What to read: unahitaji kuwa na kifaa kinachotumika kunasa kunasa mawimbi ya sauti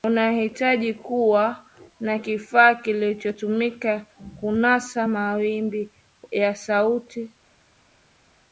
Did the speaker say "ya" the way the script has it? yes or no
yes